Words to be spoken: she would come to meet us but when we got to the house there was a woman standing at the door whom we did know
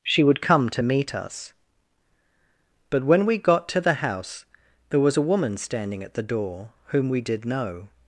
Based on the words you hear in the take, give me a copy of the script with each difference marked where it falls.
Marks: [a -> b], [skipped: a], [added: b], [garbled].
she would come to meet us but when we got to the house there was a woman standing at the door whom we did know